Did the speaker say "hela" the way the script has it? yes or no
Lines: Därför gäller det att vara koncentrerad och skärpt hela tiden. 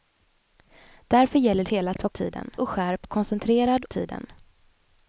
no